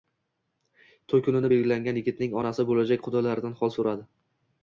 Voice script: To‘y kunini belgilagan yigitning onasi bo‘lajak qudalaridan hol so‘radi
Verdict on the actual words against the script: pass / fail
pass